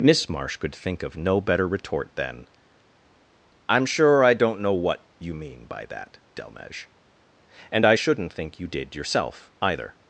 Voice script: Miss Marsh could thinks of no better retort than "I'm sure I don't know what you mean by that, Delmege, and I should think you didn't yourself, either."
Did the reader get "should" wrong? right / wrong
wrong